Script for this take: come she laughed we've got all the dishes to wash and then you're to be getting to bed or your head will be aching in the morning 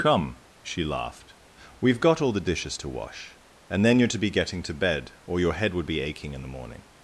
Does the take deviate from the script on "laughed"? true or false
false